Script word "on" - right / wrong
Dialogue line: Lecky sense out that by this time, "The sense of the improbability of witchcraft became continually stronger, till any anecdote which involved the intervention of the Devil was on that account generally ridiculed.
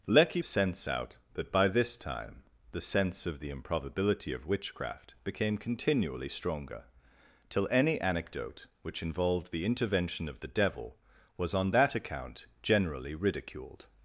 right